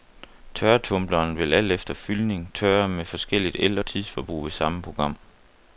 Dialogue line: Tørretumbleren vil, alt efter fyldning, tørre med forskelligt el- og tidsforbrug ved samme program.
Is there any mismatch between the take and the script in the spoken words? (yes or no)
no